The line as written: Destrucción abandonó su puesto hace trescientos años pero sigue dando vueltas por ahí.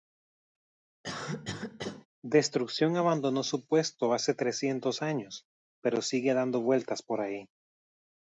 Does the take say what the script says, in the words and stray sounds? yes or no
no